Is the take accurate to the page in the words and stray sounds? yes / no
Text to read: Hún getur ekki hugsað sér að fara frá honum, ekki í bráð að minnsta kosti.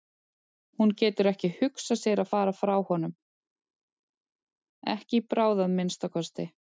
yes